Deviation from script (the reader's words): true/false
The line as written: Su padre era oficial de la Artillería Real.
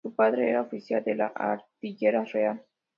false